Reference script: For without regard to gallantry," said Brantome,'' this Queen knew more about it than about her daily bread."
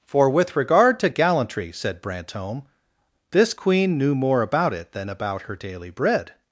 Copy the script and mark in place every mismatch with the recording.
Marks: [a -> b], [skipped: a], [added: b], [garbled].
For [without -> with] regard to gallantry," said Brantome,'' this Queen knew more about it than about her daily bread."